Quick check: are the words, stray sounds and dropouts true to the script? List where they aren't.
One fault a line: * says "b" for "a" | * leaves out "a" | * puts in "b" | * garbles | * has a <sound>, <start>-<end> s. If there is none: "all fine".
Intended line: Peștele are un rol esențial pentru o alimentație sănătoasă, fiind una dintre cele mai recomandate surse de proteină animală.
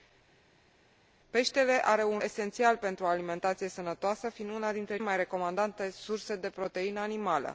* leaves out "rol"
* leaves out "cele"